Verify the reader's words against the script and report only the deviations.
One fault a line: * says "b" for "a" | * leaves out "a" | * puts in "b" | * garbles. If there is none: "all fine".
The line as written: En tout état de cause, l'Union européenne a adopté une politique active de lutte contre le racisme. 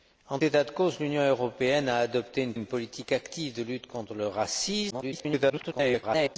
* leaves out "tout"
* puts in "une"
* garbles